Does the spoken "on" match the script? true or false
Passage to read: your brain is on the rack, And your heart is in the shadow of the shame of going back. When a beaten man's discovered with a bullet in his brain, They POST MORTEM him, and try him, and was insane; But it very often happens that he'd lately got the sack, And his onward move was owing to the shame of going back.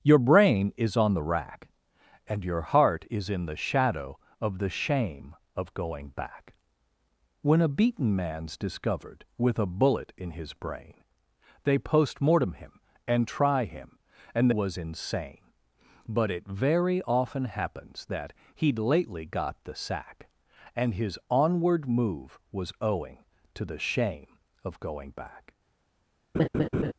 true